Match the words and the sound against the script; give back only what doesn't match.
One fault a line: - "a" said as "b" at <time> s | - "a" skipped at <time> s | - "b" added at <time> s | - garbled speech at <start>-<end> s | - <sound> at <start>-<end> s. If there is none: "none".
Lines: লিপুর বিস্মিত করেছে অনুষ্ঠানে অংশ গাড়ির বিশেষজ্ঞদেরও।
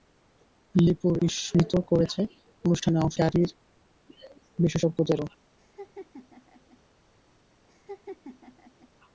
- laugh at 5.6-6.8 s
- laugh at 7.7-8.9 s